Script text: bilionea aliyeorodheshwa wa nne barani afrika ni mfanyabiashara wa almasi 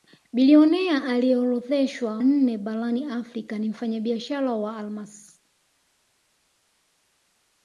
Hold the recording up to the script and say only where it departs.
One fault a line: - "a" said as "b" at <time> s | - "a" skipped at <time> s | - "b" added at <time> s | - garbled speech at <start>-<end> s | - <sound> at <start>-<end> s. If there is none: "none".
- "wa" skipped at 2.2 s